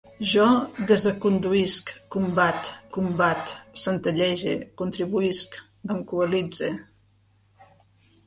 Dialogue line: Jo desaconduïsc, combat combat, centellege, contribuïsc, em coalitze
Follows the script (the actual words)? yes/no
yes